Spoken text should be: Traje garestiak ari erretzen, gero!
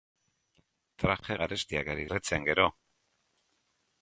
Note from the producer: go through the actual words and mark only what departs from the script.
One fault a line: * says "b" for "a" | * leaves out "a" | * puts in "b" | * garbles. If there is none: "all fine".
all fine